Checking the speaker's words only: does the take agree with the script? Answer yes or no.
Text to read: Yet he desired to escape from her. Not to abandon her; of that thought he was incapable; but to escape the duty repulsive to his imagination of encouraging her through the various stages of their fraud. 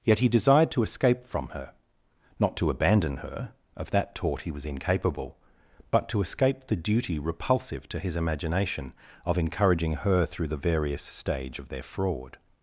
no